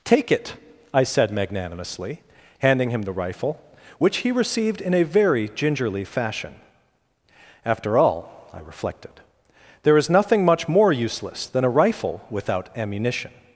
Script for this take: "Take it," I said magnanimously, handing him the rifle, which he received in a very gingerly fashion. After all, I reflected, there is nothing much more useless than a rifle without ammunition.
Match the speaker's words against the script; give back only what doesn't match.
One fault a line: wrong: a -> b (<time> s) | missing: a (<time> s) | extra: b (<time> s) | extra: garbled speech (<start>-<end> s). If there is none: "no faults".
no faults